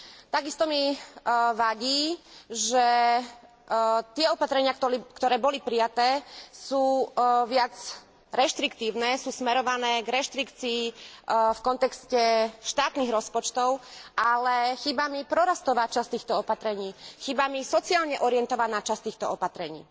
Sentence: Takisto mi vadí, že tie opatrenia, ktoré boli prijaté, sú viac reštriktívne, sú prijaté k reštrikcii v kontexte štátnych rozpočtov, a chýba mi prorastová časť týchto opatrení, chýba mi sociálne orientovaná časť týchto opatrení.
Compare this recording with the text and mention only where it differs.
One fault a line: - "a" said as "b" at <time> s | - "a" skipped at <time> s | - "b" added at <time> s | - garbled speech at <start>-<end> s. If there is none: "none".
- "prijaté" said as "smerované" at 9.3 s
- "a" said as "ale" at 14.2 s